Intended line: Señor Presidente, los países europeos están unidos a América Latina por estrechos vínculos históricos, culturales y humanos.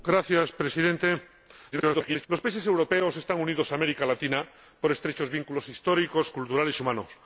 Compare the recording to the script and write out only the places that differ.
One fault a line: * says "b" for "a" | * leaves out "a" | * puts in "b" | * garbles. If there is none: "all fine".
* garbles